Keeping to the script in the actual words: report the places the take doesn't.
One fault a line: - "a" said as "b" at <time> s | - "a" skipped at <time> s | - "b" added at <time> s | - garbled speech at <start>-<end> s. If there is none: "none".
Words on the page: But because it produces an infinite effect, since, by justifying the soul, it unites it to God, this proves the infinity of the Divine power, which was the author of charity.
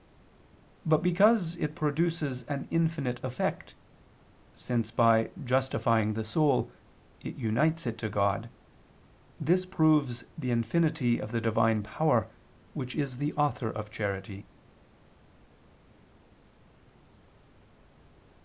- "was" said as "is" at 13.0 s